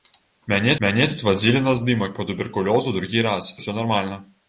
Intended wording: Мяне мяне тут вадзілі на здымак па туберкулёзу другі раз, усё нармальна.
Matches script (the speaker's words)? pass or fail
pass